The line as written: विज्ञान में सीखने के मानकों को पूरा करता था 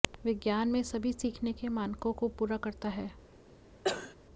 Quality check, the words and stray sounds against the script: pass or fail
fail